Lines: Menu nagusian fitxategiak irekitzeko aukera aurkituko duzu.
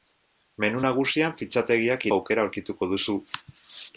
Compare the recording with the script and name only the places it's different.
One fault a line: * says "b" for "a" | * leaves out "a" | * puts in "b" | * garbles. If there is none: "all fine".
* leaves out "irekitzeko"